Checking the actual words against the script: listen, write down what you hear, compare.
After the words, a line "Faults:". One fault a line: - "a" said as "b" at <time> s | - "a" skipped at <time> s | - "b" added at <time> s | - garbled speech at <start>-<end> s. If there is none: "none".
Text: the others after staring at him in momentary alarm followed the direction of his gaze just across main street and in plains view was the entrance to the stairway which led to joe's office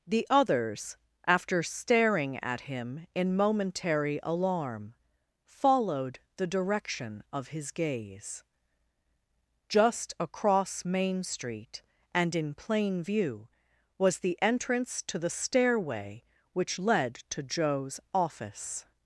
the others after staring at him in momentary alarm followed the direction of his gaze just across main street and in plain view was the entrance to the stairway which led to joe's office
Faults:
- "plains" said as "plain" at 12.6 s